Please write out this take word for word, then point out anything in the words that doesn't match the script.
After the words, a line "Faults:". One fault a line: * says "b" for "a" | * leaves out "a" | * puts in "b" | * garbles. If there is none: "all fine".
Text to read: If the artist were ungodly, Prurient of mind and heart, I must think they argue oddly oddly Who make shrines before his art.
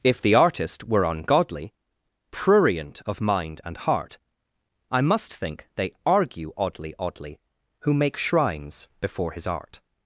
If the artist were ungodly, Prurient of mind and heart, I must think they argue oddly oddly Who make shrines before his art.
Faults:
all fine